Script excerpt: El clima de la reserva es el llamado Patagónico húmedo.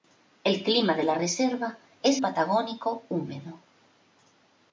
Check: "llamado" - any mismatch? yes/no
yes